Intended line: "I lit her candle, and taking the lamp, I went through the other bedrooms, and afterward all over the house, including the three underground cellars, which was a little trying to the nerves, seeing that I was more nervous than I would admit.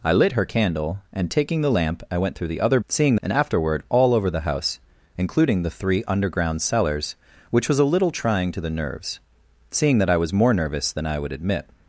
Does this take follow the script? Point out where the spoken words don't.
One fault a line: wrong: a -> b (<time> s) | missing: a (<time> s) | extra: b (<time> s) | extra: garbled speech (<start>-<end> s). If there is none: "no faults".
wrong: bedrooms -> seeing (2.9 s)